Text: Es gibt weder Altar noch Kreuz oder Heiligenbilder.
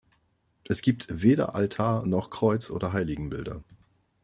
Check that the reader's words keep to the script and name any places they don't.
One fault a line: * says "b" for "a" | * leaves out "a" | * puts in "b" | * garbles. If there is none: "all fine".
all fine